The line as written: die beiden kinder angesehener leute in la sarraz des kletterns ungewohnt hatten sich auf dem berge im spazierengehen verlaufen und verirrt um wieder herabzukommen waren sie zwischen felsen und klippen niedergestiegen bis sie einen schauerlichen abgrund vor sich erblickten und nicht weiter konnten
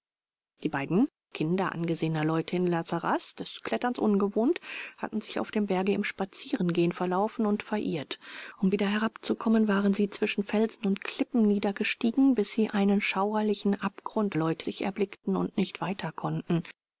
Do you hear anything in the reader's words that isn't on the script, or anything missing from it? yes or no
yes